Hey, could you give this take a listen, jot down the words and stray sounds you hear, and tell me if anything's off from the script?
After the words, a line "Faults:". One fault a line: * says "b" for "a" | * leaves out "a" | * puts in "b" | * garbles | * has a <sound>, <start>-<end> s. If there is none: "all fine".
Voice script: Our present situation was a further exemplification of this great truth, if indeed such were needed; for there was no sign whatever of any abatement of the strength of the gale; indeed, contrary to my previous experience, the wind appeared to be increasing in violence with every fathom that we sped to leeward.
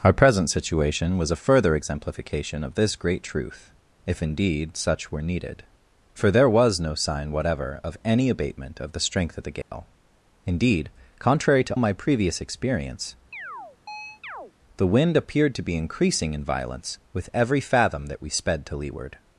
Our present situation was a further exemplification of this great truth, if indeed such were needed; for there was no sign whatever of any abatement of the strength of the gale; indeed, contrary to my previous experience, the wind appeared to be increasing in violence with every fathom that we sped to leeward.
Faults:
* has a dropout, 9.6-9.7 s
* has a chirp, 13.3-14.5 s